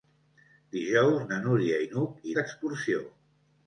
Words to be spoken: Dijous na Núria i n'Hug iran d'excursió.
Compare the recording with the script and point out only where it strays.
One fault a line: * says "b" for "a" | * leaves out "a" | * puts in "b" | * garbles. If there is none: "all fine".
* leaves out "iran"